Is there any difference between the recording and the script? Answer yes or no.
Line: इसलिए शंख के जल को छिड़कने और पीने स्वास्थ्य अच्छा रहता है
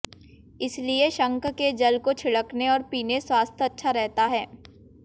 no